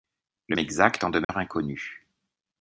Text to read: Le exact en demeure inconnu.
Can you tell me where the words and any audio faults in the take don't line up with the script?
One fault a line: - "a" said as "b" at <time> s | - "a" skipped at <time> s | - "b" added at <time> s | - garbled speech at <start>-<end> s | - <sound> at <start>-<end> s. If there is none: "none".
- dropout at 1.2-1.3 s